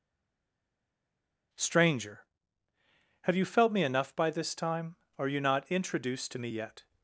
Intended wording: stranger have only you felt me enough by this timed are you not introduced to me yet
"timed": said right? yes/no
no